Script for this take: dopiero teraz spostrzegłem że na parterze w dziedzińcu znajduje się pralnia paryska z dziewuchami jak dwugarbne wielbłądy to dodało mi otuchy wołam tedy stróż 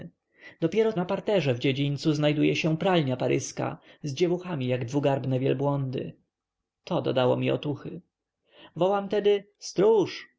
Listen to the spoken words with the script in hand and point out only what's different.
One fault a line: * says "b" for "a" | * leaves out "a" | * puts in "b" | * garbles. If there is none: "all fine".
* leaves out "teraz spostrzegłem że"